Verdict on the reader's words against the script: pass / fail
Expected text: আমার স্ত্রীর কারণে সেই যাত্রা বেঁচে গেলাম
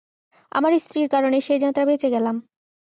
pass